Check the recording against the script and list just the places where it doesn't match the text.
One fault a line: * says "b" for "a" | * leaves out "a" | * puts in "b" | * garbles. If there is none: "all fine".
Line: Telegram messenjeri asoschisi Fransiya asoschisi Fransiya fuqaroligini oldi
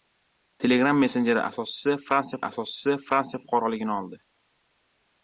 all fine